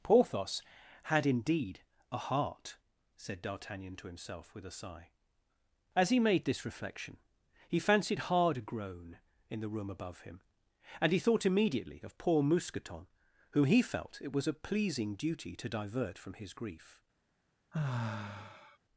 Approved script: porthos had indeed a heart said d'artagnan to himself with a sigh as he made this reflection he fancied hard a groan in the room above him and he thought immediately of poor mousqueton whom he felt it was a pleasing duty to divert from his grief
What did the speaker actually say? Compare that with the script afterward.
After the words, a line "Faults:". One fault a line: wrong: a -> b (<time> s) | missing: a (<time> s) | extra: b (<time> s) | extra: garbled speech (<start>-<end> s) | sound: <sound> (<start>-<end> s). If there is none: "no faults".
porthos had indeed a heart said d'artagnan to himself with a sigh as he made this reflection he fancied hard a groan in the room above him and he thought immediately of poor mousqueton whom he felt it was a pleasing duty to divert from his grief
Faults:
sound: sigh (17.7-18.8 s)